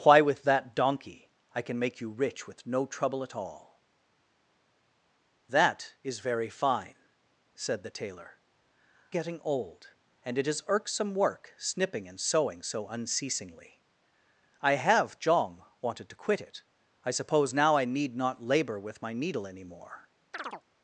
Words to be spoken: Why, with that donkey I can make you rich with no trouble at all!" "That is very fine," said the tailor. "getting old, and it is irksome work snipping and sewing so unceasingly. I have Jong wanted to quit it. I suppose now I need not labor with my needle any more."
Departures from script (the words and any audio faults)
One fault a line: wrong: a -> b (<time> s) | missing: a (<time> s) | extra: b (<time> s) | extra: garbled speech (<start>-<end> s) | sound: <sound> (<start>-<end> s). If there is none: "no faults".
sound: chirp (20.3-20.6 s)